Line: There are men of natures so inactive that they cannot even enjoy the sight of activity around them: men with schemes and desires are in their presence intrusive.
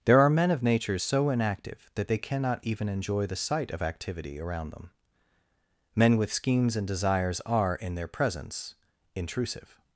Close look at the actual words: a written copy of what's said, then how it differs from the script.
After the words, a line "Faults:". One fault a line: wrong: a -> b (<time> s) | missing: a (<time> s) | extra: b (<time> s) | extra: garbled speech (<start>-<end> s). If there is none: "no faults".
There are men of natures so inactive that they cannot even enjoy the sight of activity around them: men with schemes and desires are in their presence intrusive.
Faults:
no faults